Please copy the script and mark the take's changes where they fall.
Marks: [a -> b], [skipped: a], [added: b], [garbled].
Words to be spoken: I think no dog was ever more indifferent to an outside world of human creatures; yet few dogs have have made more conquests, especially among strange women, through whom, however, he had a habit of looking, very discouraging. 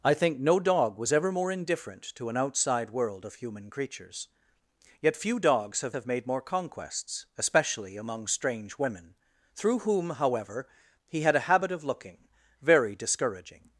I think no dog was ever more indifferent to an outside world of human creatures; yet few dogs have have made more conquests, especially among strange women, through whom, however, he had a habit of looking, very discouraging.